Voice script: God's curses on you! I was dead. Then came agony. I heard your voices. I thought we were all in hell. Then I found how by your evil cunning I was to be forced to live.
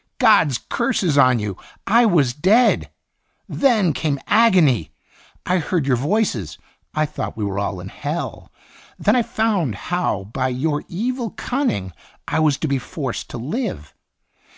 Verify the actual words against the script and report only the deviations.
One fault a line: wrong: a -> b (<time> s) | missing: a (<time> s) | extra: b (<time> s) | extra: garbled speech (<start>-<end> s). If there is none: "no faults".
no faults